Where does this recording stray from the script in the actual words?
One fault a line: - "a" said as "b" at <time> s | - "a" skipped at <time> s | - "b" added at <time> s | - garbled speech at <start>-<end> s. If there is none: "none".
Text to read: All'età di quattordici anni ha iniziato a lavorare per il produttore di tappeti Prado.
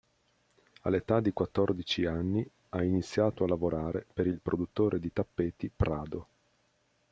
none